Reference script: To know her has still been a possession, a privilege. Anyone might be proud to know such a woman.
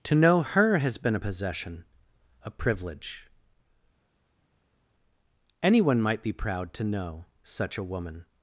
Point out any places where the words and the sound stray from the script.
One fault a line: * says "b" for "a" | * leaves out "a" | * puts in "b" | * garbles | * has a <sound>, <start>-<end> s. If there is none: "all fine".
* leaves out "still"